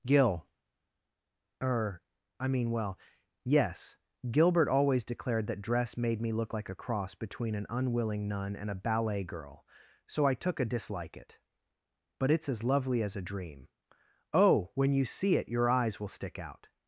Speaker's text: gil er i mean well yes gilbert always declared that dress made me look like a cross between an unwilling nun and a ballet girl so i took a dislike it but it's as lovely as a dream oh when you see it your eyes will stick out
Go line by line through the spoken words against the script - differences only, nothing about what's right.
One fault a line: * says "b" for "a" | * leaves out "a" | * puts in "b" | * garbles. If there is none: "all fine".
all fine